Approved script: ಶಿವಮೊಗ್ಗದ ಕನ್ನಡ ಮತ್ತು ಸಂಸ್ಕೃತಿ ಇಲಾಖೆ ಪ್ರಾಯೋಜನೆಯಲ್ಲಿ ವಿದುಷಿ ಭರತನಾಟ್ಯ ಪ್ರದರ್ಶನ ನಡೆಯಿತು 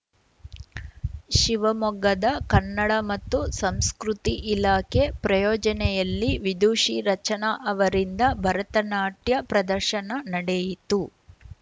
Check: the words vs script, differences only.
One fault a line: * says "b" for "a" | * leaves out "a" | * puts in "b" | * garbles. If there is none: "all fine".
* puts in "ರಚನಾ ಅವರಿಂದ"